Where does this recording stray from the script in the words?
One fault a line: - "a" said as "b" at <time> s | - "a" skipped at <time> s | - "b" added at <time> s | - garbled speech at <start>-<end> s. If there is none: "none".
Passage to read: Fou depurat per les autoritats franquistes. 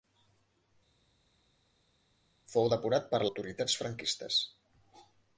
- "les" skipped at 3.2 s